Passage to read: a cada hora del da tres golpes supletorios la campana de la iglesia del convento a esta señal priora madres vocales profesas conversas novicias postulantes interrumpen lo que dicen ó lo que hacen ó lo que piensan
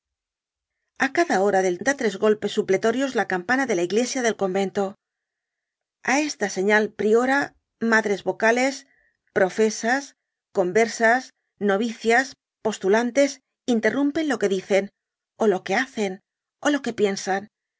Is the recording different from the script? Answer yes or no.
no